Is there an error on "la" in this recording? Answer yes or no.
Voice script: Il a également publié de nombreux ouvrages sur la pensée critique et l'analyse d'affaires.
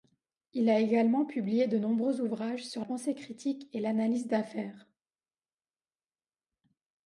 yes